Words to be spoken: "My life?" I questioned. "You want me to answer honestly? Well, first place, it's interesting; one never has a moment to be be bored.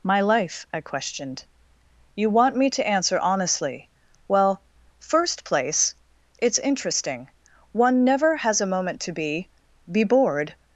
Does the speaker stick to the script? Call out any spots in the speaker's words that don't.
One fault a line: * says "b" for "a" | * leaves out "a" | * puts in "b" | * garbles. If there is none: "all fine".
all fine